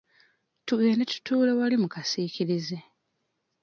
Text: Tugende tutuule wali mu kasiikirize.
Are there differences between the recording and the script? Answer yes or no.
no